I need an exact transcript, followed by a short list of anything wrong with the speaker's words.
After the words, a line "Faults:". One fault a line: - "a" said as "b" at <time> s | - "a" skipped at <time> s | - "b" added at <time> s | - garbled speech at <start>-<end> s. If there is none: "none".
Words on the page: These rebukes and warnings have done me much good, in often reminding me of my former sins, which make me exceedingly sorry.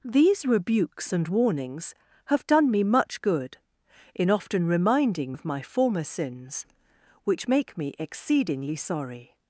These rebukes and warnings have done me much good, in often reminding of my former sins, which make me exceedingly sorry.
Faults:
- "me" skipped at 5.3 s